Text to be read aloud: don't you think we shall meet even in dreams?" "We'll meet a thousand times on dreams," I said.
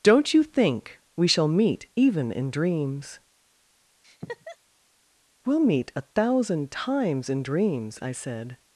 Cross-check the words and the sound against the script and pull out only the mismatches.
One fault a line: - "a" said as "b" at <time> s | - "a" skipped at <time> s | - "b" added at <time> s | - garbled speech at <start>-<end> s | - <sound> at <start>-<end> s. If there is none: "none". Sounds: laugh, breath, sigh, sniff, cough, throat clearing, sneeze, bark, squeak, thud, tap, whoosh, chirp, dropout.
- laugh at 4.0-4.6 s
- "on" said as "in" at 7.3 s